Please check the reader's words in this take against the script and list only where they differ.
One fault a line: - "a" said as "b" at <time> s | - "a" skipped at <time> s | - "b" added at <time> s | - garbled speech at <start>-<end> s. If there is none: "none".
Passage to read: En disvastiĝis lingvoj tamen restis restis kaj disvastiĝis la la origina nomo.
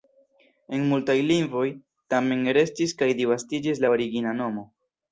- "disvastiĝis" said as "multaj" at 0.9 s
- "restis" skipped at 3.0 s
- "la" skipped at 3.9 s